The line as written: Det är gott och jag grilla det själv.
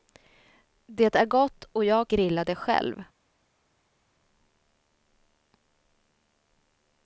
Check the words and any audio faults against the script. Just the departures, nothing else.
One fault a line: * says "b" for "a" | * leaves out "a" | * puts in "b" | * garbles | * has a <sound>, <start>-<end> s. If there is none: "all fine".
all fine